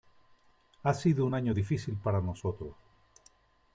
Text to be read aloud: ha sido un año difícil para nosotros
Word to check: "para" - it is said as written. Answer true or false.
true